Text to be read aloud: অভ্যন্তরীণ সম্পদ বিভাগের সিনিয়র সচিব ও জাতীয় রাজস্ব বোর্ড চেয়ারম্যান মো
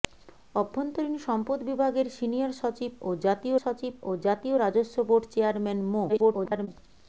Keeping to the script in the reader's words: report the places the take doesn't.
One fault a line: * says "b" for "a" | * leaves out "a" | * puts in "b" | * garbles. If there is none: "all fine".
* puts in "সচিব ও জাতীয়"
* garbles